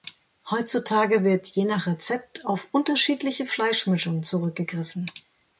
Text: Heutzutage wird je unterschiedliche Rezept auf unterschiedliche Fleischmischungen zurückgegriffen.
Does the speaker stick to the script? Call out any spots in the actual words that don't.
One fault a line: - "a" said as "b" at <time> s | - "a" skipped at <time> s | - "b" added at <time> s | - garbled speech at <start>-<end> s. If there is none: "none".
- "unterschiedliche" said as "nach" at 1.6 s